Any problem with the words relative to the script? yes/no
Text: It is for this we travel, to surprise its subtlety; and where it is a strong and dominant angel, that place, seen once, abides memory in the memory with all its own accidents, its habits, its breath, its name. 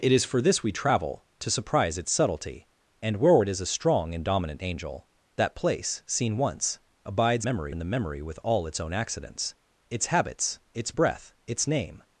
no